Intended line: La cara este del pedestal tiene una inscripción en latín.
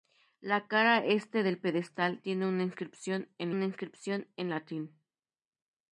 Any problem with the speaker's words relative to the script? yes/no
yes